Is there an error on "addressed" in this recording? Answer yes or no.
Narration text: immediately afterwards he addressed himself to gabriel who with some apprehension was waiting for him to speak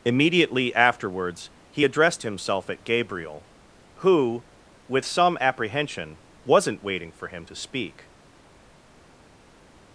no